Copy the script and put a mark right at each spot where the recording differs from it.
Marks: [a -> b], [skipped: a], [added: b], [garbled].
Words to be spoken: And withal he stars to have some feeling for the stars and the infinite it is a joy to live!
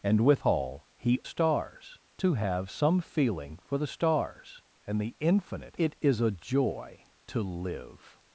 And withal he stars to have some feeling for the stars and the infinite it is a joy to live!